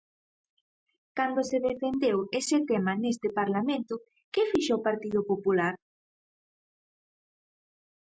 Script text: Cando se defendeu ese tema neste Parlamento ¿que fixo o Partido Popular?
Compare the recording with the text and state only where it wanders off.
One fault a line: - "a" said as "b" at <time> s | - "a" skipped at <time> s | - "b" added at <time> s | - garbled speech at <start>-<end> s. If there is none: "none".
none